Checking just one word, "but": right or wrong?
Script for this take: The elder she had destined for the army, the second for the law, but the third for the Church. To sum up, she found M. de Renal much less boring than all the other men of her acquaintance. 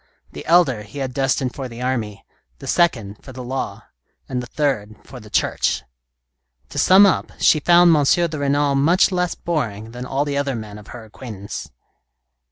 wrong